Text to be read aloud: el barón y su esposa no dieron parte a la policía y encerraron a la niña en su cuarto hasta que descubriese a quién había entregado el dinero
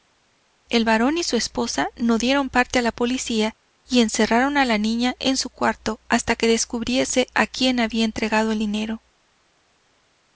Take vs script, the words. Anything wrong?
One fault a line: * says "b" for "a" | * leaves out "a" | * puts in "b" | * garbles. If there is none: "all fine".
all fine